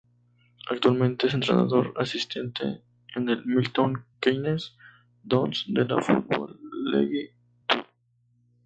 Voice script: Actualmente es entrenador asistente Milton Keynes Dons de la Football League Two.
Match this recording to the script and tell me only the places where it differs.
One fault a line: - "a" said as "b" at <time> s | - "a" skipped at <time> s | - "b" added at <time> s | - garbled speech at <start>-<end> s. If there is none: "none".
- "en el" added at 3.1 s